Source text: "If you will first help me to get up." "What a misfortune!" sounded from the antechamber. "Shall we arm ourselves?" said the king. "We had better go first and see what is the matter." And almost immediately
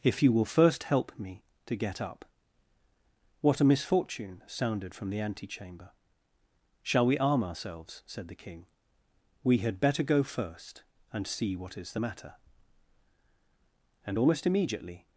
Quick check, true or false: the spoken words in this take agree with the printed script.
true